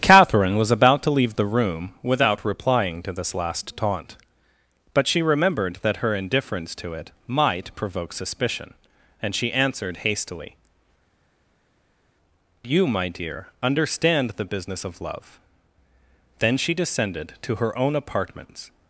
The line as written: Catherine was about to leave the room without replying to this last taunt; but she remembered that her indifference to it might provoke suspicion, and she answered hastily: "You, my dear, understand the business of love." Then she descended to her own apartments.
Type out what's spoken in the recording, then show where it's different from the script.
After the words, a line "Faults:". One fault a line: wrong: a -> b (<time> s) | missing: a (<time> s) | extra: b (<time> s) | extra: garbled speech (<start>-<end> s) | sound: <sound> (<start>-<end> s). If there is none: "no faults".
Catherine was about to leave the room without replying to this last taunt; but she remembered that her indifference to it might provoke suspicion, and she answered hastily: "You, my dear, understand the business of love." Then she descended to her own apartments.
Faults:
no faults